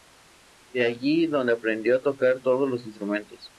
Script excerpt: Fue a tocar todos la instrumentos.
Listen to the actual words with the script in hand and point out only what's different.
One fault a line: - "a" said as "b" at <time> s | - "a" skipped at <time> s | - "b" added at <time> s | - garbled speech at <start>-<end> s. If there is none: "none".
- "allí donde aprendió" added at 0.8 s
- "la" said as "los" at 2.7 s